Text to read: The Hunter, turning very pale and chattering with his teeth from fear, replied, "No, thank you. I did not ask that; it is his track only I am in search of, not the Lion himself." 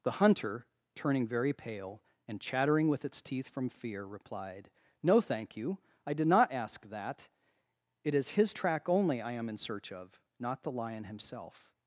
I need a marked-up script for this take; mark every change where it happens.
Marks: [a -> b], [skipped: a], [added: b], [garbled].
The Hunter, turning very pale and chattering with [his -> its] teeth from fear, replied, "No, thank you. I did not ask that; it is his track only I am in search of, not the Lion himself."